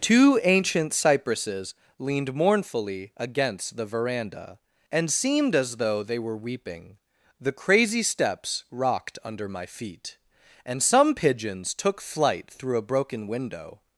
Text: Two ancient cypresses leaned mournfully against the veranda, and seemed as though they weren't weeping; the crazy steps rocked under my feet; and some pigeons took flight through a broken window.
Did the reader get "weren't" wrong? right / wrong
wrong